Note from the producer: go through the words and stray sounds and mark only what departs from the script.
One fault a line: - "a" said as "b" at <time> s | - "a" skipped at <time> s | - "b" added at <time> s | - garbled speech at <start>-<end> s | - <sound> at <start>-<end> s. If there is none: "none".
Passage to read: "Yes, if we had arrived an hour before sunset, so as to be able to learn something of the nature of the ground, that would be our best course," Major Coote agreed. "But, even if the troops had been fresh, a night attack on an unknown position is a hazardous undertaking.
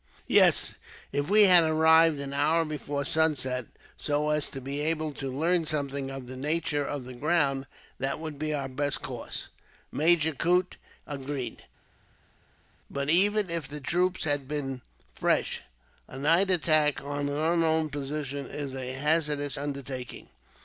none